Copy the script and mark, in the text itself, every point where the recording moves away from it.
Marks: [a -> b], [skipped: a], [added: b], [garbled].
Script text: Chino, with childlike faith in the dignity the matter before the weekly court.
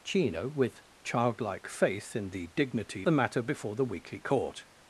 Chino, with childlike faith in the dignity the matter before the weekly court.